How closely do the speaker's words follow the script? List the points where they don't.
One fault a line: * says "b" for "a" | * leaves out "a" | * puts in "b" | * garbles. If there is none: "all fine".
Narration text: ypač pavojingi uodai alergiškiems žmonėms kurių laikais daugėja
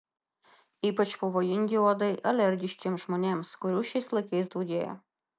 * puts in "šiais"